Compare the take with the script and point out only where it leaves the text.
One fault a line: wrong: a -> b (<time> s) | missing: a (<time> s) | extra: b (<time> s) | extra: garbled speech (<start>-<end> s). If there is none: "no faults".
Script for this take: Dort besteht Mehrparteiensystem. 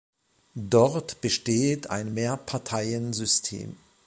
extra: ein (1.9 s)